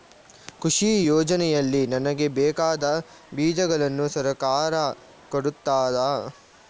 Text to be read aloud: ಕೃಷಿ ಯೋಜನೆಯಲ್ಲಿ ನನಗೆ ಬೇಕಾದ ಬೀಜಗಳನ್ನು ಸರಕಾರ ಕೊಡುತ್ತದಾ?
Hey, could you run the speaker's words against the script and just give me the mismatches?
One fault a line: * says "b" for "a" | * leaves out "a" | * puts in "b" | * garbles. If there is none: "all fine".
all fine